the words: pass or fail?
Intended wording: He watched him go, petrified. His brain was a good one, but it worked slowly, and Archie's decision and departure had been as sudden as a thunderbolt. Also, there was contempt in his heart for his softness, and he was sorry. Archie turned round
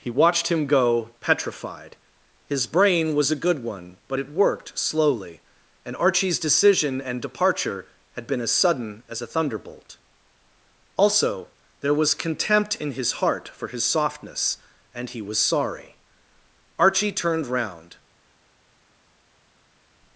pass